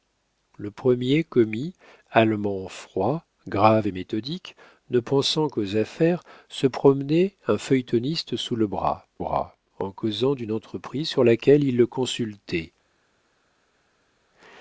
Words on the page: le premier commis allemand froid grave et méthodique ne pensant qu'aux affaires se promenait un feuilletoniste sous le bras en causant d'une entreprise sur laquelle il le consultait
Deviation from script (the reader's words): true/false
true